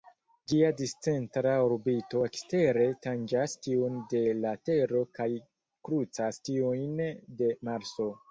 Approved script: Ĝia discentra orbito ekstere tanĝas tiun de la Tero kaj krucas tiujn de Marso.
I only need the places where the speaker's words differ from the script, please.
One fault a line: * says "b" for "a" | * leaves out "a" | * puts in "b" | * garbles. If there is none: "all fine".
all fine